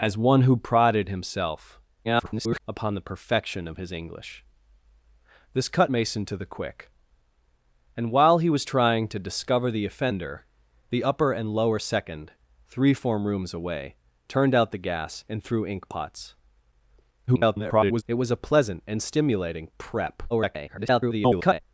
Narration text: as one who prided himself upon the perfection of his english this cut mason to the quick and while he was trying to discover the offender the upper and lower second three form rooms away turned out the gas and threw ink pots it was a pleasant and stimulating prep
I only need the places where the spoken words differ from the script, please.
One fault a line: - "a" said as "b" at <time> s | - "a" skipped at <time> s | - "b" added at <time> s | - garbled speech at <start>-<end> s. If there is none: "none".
- garbled speech at 2.0-2.6 s
- garbled speech at 17.3-18.0 s
- garbled speech at 20.3-21.6 s